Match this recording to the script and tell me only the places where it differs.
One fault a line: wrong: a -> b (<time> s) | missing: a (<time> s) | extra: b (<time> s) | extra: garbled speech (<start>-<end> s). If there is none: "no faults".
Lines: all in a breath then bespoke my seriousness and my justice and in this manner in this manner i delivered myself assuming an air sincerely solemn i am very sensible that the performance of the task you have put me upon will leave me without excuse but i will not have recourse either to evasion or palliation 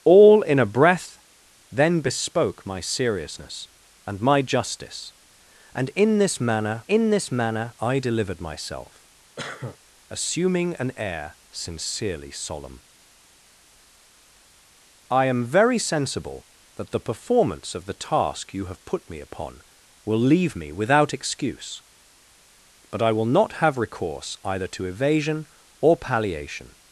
no faults